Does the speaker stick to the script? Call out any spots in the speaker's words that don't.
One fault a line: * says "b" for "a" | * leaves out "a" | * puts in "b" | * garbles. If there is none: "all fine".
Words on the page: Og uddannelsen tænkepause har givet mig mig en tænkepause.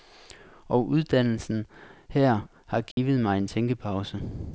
* says "her" for "tænkepause"
* leaves out "mig"